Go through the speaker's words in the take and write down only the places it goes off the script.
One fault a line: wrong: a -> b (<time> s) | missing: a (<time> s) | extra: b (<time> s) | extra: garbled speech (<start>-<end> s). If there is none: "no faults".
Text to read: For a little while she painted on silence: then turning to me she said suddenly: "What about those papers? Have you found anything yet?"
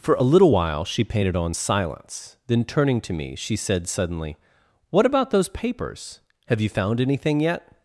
no faults